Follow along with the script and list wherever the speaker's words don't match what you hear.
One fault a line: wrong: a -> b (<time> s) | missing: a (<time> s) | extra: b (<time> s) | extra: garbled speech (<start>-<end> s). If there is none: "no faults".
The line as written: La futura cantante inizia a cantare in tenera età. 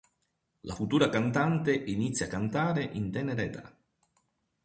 no faults